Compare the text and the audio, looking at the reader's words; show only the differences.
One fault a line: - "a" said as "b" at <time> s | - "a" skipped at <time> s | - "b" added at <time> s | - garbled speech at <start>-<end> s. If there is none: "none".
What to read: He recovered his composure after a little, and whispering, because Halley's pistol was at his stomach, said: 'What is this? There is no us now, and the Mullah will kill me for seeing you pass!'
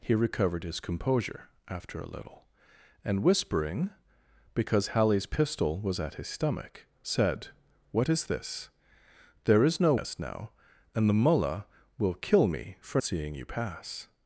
none